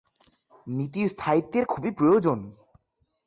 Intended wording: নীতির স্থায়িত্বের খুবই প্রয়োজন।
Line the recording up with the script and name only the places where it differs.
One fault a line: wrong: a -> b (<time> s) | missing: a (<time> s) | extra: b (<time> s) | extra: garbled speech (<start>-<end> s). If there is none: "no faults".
no faults